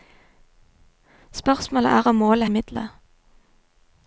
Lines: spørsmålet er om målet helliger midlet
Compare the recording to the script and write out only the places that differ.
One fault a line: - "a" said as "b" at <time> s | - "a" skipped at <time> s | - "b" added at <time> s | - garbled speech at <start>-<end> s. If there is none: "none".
- "helliger" skipped at 2.5 s